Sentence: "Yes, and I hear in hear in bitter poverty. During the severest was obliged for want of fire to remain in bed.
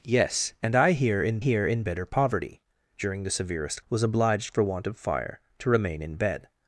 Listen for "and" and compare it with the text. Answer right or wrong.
right